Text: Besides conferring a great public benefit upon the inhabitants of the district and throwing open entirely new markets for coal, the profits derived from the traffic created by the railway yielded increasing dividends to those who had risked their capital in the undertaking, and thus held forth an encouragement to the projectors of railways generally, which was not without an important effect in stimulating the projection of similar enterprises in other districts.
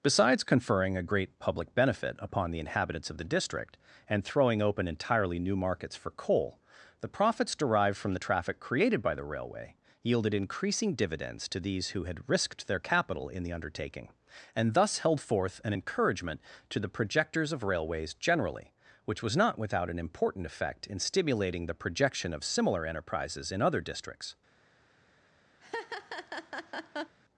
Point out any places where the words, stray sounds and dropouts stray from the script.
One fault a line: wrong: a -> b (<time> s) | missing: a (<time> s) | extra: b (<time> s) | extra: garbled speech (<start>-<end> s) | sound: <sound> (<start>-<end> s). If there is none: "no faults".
wrong: those -> these (11.6 s)
sound: laugh (25.6-27.2 s)